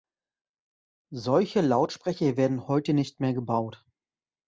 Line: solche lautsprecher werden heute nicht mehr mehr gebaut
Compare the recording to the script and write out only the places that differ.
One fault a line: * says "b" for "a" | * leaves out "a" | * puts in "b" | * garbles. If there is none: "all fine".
* leaves out "mehr"